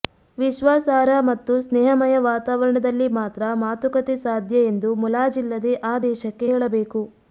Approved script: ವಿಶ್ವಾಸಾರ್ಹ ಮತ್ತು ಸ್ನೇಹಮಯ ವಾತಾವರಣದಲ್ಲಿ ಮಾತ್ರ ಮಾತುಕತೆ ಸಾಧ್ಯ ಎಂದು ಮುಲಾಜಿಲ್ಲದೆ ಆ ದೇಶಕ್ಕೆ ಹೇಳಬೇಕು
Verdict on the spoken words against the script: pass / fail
pass